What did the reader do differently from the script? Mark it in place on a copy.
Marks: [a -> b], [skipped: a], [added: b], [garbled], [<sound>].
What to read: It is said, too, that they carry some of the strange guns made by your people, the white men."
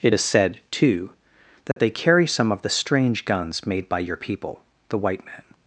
It is said, too, that [dropout] they carry some of the strange guns made by your people, the white men."